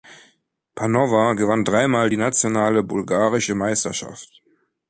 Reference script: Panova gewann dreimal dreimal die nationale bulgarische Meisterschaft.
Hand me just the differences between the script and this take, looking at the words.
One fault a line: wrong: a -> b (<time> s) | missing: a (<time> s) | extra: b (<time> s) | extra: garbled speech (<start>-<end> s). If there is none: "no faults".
missing: dreimal (2.1 s)